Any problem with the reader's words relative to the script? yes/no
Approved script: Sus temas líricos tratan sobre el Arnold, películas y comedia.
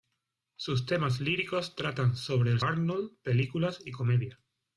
no